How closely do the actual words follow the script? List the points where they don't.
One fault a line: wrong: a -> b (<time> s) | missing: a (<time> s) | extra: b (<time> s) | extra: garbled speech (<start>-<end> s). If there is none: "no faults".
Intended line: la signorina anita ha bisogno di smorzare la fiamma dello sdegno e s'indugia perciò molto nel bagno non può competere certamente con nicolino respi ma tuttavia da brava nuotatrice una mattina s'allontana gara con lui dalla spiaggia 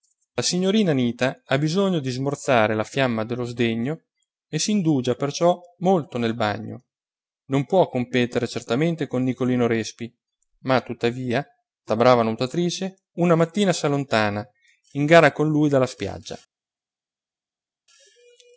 extra: in (14.9 s)